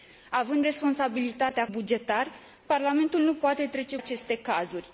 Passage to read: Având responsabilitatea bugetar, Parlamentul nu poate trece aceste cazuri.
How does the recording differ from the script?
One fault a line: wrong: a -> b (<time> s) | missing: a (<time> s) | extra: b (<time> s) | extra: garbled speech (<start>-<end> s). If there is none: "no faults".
no faults